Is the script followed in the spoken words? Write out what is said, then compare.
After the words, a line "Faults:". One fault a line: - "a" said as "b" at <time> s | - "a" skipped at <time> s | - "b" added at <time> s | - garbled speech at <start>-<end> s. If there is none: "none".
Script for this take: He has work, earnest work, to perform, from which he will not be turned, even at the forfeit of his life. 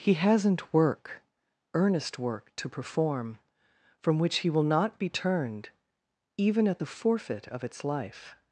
He hasn't work, earnest work, to perform, from which he will not be turned, even at the forfeit of its life.
Faults:
- "has" said as "hasn't" at 0.1 s
- "his" said as "its" at 7.6 s